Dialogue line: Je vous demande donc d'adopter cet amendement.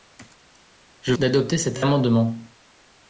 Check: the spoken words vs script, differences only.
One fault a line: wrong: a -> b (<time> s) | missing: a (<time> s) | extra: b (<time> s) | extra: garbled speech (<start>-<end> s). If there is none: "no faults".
missing: vous demande donc (1.1 s)